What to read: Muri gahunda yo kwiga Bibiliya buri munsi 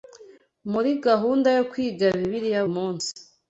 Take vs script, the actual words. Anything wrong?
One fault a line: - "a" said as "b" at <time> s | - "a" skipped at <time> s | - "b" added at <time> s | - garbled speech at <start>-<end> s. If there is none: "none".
- "buri" skipped at 2.6 s